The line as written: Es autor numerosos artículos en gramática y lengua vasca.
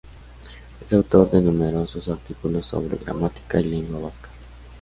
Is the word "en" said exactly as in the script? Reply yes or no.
no